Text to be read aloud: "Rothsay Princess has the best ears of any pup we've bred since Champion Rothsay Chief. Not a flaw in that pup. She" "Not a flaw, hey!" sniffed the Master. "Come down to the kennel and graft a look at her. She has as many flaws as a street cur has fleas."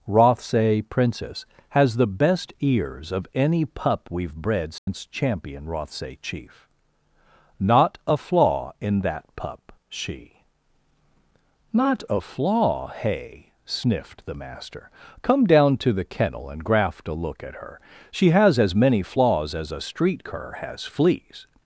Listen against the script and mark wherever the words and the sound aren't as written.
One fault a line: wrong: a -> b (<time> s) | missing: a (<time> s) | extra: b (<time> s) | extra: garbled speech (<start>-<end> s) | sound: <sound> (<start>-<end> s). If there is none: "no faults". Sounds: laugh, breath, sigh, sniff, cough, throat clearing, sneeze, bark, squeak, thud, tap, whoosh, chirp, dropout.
sound: dropout (4.8-4.9 s)